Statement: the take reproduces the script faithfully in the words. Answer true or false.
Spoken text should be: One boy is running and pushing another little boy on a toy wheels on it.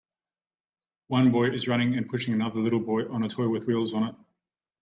false